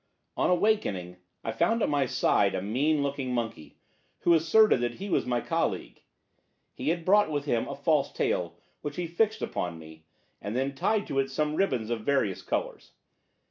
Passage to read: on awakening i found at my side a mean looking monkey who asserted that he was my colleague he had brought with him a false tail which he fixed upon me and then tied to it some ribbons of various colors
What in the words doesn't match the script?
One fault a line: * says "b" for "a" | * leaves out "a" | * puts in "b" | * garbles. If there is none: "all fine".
all fine